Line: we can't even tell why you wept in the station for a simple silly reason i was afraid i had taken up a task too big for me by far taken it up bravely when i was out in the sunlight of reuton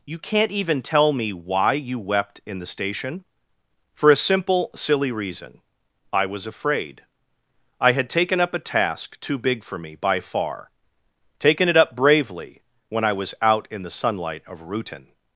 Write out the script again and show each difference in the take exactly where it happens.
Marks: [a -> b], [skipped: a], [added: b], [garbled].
[we -> you] can't even tell [added: me] why you wept in the station for a simple silly reason i was afraid i had taken up a task too big for me by far taken it up bravely when i was out in the sunlight of reuton